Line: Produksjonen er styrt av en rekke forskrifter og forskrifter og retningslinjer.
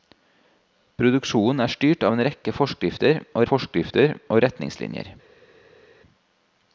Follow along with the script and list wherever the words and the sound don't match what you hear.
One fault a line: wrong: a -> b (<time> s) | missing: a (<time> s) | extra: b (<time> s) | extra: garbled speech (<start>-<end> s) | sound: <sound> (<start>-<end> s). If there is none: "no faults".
no faults